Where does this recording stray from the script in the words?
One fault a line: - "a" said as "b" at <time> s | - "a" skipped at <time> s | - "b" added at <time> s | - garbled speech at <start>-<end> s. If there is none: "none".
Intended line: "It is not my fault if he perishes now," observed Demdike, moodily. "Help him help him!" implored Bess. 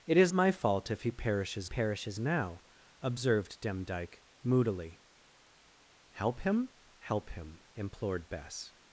- "not" skipped at 0.3 s
- "perishes" added at 1.6 s